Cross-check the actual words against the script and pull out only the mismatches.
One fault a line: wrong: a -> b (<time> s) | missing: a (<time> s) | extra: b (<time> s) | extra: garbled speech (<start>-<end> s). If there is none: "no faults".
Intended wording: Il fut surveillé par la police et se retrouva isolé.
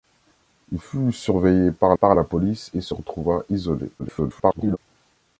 extra: par (1.9 s)
extra: garbled speech (4.0-4.8 s)